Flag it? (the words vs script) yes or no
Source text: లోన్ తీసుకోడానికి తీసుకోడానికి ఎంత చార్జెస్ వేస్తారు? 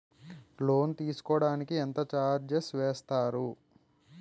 yes